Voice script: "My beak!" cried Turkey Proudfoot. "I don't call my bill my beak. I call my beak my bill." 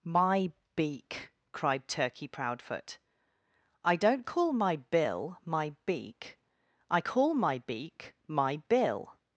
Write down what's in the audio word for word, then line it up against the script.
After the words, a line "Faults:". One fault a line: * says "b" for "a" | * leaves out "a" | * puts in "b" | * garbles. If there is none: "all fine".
"My beak!" cried Turkey Proudfoot. "I don't call my bill my beak. I call my beak my bill."
Faults:
all fine